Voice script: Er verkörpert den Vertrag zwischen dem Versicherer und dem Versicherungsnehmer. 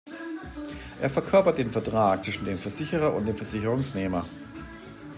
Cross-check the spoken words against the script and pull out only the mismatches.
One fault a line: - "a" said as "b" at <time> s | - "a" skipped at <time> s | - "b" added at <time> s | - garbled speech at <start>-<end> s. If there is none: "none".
none